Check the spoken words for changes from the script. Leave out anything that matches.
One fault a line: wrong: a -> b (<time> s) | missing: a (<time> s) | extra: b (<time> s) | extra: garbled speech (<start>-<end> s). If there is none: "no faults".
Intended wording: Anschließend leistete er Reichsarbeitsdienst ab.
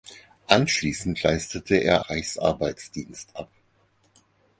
no faults